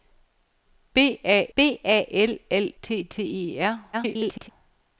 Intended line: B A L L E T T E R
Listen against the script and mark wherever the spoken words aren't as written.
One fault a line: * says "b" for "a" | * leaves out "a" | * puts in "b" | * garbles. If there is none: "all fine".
* puts in "b A"
* leaves out "E"
* garbles